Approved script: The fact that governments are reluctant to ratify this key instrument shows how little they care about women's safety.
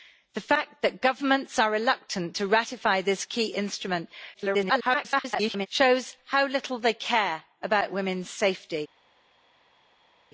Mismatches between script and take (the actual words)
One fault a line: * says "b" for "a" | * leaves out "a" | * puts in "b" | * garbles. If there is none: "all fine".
* garbles